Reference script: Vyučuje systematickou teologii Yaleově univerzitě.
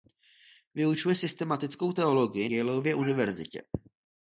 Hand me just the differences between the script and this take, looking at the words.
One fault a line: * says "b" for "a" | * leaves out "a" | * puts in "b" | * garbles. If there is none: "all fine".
all fine